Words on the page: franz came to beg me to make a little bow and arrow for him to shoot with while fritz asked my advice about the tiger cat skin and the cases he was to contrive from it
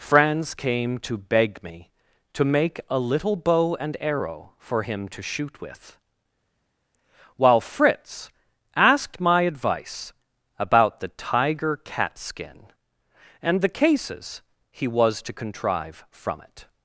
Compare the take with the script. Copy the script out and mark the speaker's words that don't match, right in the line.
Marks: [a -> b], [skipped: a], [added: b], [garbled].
franz came to beg me to make a little bow and arrow for him to shoot with while fritz asked my advice about the tiger cat skin and the cases he was to contrive from it